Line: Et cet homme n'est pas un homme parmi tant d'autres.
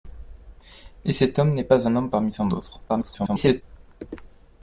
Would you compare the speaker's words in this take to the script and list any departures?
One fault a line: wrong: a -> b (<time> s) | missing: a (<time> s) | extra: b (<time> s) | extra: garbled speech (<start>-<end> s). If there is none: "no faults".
extra: garbled speech (2.9-3.6 s)